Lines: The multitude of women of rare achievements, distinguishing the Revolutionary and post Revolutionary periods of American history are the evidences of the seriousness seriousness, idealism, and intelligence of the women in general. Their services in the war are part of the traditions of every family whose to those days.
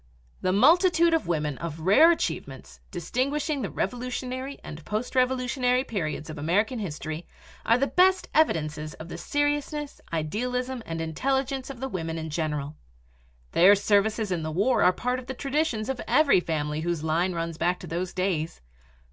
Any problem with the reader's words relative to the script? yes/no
yes